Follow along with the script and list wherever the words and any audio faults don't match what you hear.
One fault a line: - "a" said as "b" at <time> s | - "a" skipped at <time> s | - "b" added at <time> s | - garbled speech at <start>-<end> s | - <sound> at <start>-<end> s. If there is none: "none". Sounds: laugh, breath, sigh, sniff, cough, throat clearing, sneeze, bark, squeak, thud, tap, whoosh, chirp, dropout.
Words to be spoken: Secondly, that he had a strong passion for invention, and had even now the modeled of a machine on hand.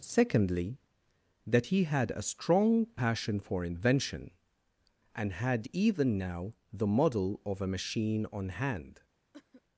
- "modeled" said as "model" at 6.9 s
- cough at 9.3-9.6 s